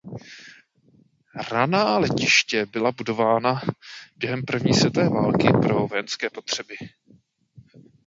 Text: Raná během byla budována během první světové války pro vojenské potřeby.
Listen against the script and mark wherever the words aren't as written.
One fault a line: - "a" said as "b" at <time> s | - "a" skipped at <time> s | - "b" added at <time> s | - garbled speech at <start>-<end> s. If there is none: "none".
- "během" said as "letiště" at 2.0 s